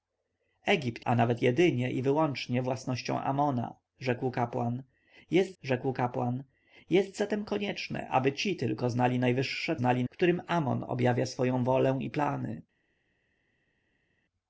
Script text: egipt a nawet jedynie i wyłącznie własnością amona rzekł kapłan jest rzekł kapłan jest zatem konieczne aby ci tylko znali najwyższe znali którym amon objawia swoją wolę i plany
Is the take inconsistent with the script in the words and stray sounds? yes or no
no